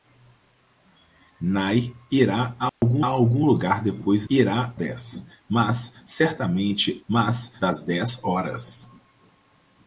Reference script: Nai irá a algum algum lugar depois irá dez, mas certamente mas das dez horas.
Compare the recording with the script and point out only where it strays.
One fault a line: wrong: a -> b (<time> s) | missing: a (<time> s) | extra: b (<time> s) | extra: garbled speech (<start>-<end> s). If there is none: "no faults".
no faults